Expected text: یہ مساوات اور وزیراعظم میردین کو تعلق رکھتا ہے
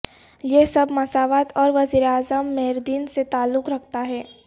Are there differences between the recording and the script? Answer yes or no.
yes